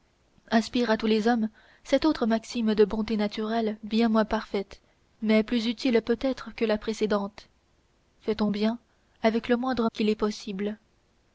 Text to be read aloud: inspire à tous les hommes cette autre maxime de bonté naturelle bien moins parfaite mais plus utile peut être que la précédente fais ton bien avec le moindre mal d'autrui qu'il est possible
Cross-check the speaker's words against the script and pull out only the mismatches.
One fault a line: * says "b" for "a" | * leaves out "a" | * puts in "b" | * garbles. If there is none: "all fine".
* leaves out "mal d'autrui"